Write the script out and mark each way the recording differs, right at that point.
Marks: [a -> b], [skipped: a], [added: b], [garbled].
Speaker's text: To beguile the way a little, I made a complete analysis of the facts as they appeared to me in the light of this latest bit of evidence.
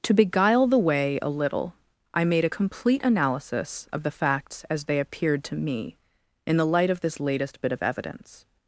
To beguile the way a little, I made a complete analysis of the facts as they appeared to me in the light of this latest bit of evidence.